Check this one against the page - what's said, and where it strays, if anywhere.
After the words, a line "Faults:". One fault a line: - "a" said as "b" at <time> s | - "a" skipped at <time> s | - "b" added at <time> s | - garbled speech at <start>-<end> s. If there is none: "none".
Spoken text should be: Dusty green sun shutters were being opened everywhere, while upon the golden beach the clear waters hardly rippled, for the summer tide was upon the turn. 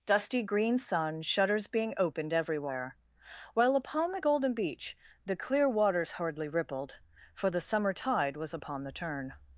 Dusty green sun shutters being opened everywhere, while upon the golden beach the clear waters hardly rippled, for the summer tide was upon the turn.
Faults:
- "were" skipped at 1.7 s